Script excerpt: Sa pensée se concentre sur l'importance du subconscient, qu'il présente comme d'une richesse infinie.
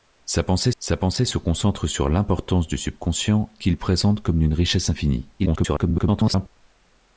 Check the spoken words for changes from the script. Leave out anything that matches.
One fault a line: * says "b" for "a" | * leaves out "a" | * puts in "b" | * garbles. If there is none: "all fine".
* puts in "sa pensée"
* garbles